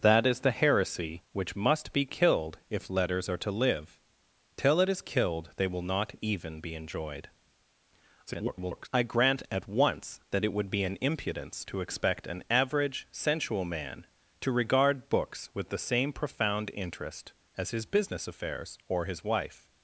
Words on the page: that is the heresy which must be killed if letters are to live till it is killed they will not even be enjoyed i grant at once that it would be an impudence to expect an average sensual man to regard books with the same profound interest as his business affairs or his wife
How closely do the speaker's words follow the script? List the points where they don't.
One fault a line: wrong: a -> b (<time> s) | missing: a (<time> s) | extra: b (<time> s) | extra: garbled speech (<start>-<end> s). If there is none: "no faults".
extra: garbled speech (8.3-8.9 s)